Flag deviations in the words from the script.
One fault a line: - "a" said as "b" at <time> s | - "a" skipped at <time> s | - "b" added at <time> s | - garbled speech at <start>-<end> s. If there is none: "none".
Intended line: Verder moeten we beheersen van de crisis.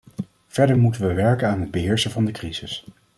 - "werken aan het" added at 1.1 s